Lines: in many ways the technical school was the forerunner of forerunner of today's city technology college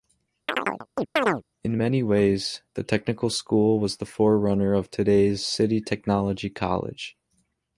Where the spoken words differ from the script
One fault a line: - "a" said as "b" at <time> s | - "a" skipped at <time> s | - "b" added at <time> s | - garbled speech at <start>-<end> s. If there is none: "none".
- "forerunner of" skipped at 4.9 s